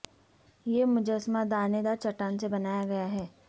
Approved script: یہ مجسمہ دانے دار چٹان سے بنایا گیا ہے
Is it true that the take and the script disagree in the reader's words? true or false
false